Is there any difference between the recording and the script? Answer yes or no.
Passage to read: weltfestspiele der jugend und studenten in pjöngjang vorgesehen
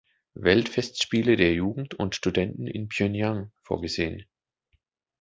no